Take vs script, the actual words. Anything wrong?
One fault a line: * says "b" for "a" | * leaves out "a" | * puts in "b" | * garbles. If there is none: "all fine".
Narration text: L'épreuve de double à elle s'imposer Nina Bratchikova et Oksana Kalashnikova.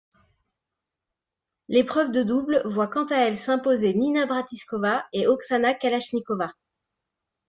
* puts in "voit quant"